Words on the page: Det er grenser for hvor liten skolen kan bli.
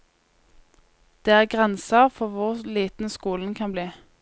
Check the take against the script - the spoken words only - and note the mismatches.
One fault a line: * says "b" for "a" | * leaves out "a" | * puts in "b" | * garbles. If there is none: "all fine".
all fine